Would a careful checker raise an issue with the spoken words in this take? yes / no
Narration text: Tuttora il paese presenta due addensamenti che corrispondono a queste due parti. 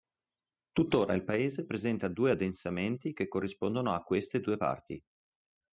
no